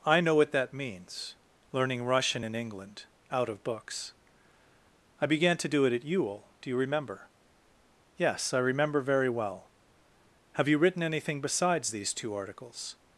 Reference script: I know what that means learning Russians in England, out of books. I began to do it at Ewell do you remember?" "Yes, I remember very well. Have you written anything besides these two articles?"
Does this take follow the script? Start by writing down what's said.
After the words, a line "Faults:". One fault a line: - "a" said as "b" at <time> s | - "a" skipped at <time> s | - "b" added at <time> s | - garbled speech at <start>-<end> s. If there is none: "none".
I know what that means learning Russian in England, out of books. I began to do it at Ewell do you remember?" "Yes, I remember very well. Have you written anything besides these two articles?"
Faults:
- "Russians" said as "Russian" at 2.0 s